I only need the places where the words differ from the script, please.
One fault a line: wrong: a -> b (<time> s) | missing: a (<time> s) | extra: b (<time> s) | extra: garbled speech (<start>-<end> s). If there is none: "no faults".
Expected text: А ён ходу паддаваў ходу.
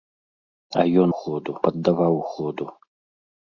no faults